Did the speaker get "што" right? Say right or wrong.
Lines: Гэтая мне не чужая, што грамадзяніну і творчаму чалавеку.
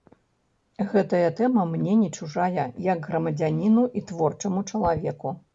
wrong